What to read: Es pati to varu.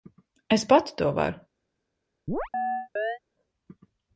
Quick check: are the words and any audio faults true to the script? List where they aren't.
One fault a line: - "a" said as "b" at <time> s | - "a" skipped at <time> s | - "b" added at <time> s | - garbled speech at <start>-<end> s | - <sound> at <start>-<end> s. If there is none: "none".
- chirp at 2.3-3.2 s